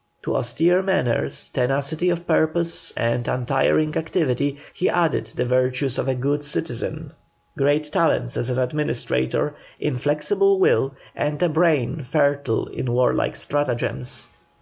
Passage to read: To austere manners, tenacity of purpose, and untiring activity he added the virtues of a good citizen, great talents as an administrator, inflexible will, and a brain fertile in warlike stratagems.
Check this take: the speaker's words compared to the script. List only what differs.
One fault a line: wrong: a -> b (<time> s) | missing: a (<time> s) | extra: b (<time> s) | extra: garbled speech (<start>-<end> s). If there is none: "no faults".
no faults